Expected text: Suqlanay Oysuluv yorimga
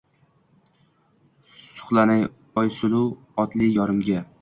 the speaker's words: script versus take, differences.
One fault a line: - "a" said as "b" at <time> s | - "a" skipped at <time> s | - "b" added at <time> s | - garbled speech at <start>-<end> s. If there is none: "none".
- "otli" added at 3.5 s